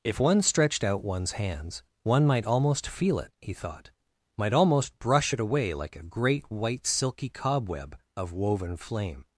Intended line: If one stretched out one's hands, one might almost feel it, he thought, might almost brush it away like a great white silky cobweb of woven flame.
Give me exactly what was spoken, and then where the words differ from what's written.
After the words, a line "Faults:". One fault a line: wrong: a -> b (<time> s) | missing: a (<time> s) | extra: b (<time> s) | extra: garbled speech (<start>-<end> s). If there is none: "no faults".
If one stretched out one's hands, one might almost feel it, he thought, might almost brush it away like a great white silky cobweb of woven flame.
Faults:
no faults